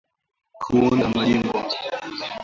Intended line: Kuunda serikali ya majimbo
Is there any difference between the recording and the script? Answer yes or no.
yes